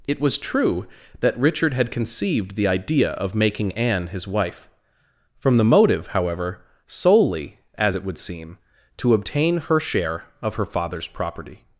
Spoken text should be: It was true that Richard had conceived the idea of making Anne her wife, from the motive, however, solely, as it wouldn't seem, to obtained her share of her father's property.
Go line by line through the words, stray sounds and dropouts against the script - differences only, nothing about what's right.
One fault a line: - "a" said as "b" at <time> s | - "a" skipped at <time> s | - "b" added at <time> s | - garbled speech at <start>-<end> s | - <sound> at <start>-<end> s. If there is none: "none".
- "her" said as "his" at 4.1 s
- "wouldn't" said as "would" at 8.0 s
- "obtained" said as "obtain" at 9.1 s